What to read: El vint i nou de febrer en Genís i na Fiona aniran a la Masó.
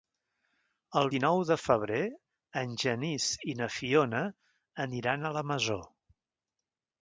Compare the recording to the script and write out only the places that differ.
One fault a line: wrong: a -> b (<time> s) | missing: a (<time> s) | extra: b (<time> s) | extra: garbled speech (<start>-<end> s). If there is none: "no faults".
missing: vint (1.1 s)